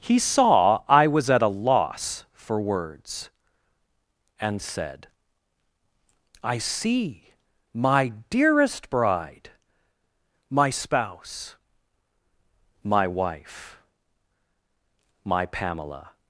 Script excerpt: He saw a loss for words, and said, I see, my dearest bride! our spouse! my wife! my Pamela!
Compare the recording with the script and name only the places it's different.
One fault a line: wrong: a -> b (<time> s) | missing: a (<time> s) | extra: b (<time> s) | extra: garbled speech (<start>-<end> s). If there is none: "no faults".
extra: I was at (0.9 s)
wrong: our -> my (10.5 s)